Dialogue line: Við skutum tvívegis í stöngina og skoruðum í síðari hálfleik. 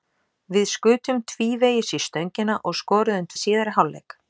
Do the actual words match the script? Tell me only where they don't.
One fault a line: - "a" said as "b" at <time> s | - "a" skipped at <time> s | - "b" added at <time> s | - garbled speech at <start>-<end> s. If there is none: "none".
none